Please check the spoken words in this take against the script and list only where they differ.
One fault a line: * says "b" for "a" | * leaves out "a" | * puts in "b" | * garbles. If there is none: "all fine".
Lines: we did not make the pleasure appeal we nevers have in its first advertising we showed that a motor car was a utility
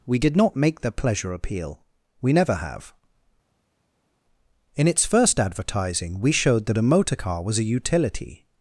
* says "never" for "nevers"